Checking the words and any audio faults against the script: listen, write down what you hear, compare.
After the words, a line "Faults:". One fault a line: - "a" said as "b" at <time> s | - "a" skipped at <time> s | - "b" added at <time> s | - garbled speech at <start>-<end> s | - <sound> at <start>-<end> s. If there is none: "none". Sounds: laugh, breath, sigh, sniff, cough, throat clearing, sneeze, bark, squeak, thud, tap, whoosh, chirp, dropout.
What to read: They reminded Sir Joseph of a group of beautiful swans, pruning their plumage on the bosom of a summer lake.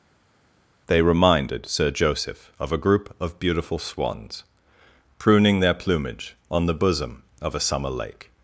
They reminded Sir Joseph of a group of beautiful swans, pruning their plumage on the bosom of a summer lake.
Faults:
none